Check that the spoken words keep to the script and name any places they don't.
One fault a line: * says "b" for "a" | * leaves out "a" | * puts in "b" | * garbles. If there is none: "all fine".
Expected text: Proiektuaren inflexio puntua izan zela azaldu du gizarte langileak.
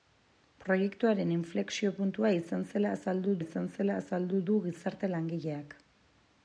* puts in "izan zela azaldu"